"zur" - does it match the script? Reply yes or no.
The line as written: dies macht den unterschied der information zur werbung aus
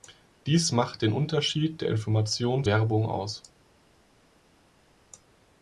no